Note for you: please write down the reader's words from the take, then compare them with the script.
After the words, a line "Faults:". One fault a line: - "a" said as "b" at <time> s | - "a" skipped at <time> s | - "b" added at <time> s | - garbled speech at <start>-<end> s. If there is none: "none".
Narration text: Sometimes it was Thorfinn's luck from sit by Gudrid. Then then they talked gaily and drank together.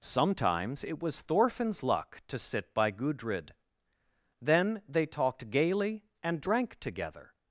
Sometimes it was Thorfinn's luck to sit by Gudrid. Then they talked gaily and drank together.
Faults:
- "from" said as "to" at 2.3 s
- "then" skipped at 4.8 s